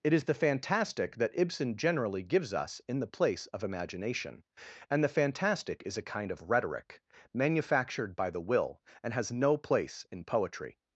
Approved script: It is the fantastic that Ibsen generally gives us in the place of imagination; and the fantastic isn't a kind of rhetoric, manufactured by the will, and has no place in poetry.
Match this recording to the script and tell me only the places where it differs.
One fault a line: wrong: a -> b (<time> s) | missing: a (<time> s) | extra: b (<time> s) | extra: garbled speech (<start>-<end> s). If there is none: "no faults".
wrong: isn't -> is (5.8 s)